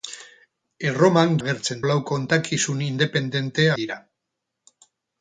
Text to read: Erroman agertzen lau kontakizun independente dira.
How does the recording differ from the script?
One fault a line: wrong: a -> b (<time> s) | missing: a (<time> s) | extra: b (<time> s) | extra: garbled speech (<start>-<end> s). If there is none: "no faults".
no faults